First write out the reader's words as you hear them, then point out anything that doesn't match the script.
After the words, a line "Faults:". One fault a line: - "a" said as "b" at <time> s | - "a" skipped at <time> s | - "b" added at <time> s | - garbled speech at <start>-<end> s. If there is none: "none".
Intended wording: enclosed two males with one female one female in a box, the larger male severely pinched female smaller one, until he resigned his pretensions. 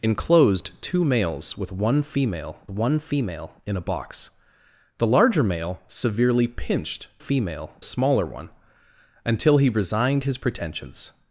enclosed two males with one female one female in a box, the larger male severely pinched female smaller one, until he resigned his pretensions.
Faults:
none